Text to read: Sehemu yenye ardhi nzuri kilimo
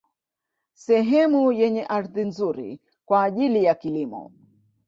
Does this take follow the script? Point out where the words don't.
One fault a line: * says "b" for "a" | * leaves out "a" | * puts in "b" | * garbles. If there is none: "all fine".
* puts in "kwa ajili ya"